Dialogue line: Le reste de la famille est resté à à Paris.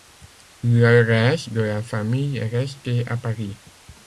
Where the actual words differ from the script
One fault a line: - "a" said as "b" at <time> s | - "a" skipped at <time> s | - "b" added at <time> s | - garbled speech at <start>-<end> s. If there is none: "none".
- "à" skipped at 3.2 s